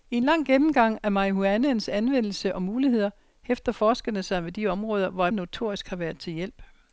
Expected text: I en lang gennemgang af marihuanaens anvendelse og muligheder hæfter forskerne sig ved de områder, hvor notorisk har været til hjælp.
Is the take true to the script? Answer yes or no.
yes